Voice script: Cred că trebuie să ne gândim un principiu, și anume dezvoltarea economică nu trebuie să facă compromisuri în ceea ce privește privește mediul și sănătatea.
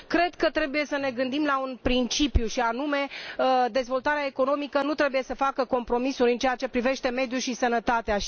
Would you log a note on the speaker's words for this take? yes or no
yes